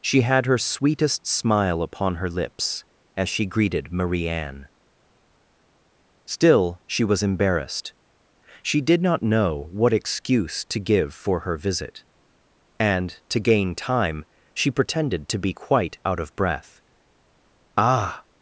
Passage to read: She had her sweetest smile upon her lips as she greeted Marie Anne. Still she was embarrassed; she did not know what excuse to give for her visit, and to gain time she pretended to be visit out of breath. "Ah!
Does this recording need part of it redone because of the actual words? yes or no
yes